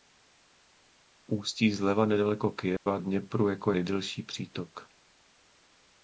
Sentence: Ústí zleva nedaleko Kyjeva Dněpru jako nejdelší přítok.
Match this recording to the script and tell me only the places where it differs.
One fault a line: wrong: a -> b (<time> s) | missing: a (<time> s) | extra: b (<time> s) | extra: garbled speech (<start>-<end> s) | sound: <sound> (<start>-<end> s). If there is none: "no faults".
sound: dropout (2.8-2.9 s)